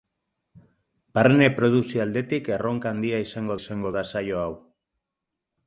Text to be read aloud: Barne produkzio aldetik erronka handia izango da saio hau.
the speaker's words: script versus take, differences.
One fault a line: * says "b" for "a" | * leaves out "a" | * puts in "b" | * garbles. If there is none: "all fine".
* puts in "izango"